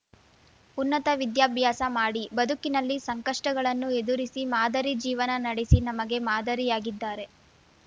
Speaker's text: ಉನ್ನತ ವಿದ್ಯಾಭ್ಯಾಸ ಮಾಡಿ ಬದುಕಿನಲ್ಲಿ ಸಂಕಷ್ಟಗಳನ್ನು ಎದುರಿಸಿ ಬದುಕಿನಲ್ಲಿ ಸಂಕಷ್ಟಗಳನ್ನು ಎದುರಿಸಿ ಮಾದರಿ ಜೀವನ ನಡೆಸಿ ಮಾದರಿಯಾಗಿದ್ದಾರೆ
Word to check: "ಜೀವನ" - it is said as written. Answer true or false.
true